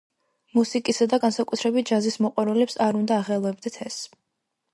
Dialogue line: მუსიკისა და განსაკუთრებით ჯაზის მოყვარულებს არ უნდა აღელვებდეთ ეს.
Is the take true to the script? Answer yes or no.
yes